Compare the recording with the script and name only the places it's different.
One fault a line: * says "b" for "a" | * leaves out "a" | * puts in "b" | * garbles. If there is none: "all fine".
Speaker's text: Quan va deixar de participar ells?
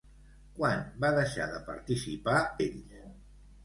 all fine